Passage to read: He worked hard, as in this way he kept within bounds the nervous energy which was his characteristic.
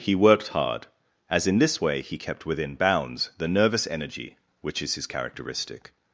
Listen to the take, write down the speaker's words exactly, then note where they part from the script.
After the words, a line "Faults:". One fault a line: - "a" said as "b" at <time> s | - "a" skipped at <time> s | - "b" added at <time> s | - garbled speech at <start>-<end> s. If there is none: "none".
He worked hard, as in this way he kept within bounds the nervous energy which is his characteristic.
Faults:
- "was" said as "is" at 4.8 s